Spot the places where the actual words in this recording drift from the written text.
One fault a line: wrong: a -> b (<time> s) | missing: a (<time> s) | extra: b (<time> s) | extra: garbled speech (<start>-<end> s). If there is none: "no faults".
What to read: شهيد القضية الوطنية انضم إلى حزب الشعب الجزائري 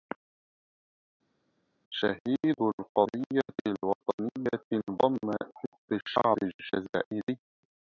missing: إلى (5.3 s)